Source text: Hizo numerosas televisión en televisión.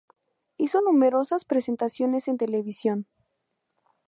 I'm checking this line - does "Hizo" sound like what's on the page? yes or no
yes